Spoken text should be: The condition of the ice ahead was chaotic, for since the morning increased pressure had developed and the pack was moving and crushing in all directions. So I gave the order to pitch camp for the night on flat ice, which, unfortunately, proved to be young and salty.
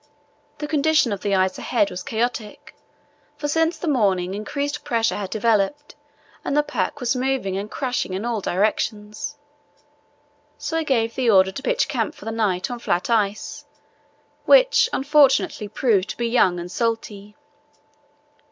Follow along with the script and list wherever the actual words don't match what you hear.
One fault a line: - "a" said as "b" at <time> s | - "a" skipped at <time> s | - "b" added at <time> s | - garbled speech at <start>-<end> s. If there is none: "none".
none